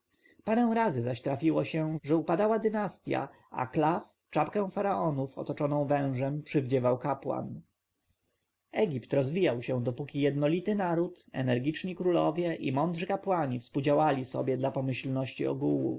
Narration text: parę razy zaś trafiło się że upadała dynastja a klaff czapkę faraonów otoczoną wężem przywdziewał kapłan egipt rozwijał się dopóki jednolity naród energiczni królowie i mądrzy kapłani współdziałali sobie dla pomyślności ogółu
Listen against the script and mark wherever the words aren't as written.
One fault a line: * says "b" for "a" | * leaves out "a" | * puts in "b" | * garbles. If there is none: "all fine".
all fine